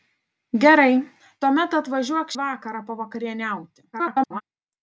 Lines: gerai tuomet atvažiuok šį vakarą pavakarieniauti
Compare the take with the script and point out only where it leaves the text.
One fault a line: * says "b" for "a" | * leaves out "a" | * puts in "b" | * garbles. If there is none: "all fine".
* leaves out "šį"
* garbles